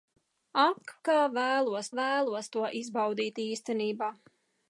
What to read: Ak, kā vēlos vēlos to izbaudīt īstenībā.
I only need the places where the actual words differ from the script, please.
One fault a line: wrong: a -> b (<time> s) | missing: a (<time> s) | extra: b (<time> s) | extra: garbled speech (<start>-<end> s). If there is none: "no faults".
no faults